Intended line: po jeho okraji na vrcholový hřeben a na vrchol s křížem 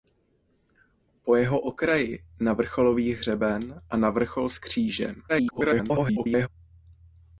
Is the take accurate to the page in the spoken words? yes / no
no